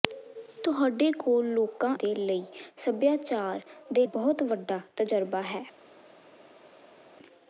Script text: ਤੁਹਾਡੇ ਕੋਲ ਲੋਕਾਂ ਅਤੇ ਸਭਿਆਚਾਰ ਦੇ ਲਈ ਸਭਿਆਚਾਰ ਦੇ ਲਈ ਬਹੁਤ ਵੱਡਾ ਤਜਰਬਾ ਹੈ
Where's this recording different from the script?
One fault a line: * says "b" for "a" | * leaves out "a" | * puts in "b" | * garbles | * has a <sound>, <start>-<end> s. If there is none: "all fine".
* leaves out "ਅਤੇ ਸਭਿਆਚਾਰ"
* leaves out "ਲਈ"